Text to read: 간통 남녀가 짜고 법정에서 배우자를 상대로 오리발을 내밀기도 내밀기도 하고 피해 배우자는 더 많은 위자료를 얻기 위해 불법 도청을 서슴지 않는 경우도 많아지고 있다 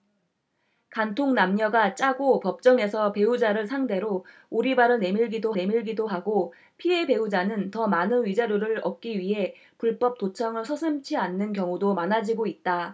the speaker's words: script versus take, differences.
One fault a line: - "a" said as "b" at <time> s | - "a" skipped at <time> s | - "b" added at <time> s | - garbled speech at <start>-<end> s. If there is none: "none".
none